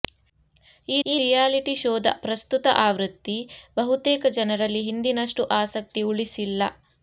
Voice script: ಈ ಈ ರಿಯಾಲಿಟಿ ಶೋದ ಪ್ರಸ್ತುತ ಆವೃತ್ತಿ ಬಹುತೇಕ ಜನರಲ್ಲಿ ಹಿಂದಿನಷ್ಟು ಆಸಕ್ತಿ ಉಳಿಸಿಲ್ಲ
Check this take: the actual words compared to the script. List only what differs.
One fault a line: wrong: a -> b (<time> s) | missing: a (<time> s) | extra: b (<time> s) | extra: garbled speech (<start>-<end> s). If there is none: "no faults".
no faults